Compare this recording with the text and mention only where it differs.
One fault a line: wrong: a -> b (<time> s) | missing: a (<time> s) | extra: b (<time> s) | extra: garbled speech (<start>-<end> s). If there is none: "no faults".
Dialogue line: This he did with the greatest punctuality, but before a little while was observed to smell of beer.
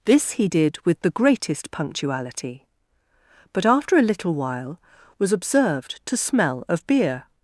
wrong: before -> after (3.7 s)